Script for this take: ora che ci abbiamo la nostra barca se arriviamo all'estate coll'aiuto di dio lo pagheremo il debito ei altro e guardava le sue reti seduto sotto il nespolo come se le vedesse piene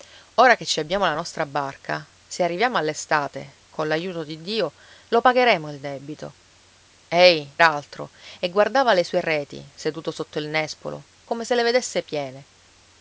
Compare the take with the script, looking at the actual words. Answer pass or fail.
pass